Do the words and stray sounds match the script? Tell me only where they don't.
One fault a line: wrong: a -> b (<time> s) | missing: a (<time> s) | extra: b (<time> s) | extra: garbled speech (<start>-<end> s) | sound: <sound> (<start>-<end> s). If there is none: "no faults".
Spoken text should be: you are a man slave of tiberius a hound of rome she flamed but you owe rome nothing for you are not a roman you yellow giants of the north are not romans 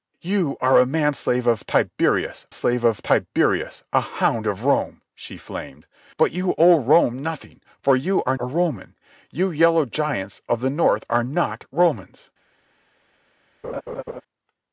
extra: slave of tiberius (2.5 s)
missing: not (8.4 s)
sound: laugh (13.6-14.2 s)